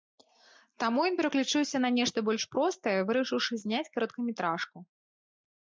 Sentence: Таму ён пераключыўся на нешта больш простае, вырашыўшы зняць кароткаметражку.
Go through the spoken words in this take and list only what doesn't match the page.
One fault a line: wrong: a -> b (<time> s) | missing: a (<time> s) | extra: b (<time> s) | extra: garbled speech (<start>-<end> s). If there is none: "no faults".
no faults